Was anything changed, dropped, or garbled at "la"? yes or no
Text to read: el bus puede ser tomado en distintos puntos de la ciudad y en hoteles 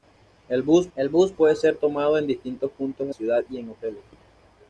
yes